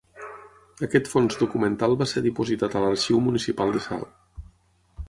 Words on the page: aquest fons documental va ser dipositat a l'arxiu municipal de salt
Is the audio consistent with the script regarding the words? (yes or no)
yes